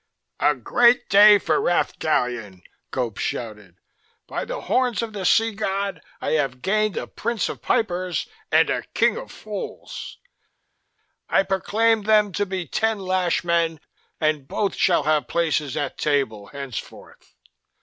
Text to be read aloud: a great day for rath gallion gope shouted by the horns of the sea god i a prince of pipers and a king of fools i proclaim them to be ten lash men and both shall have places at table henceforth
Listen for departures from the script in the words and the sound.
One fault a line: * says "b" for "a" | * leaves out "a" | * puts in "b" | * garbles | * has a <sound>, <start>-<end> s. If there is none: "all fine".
* puts in "have gained"